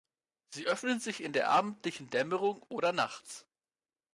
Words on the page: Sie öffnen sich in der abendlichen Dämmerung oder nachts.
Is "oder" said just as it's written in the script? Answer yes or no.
yes